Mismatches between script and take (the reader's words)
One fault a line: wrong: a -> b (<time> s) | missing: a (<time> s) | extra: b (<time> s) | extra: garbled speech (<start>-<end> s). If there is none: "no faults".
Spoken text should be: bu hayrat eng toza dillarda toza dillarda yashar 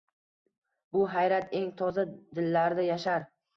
missing: toza dillarda (2.9 s)